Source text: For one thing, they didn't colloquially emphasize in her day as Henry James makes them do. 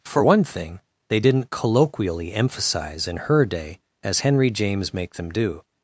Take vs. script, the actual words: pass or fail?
fail